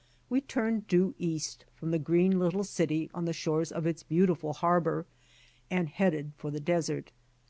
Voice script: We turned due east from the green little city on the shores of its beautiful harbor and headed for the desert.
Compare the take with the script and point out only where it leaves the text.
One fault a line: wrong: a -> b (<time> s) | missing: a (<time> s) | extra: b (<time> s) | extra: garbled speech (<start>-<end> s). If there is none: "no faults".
no faults